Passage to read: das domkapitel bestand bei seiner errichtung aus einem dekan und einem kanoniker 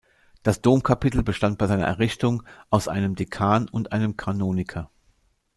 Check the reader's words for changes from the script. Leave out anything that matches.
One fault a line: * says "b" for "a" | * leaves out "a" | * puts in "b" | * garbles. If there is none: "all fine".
all fine